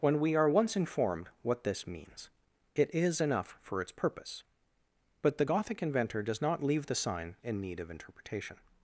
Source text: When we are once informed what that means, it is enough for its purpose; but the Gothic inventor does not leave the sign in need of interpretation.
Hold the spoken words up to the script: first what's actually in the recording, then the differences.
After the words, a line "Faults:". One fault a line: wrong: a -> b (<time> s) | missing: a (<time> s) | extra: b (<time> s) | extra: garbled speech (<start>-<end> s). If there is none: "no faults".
When we are once informed what this means, it is enough for its purpose; but the Gothic inventor does not leave the sign in need of interpretation.
Faults:
wrong: that -> this (1.6 s)